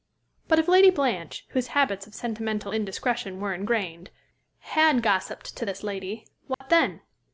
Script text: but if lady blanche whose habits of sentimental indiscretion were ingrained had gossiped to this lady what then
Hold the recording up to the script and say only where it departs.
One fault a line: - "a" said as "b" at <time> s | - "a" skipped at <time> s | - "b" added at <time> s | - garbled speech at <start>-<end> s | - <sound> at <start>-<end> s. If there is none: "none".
- dropout at 6.5-6.6 s